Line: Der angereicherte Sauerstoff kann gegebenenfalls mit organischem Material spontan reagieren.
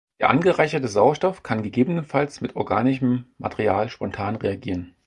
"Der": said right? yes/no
yes